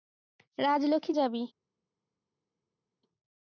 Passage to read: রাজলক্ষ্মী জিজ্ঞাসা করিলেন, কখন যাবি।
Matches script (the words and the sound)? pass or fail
fail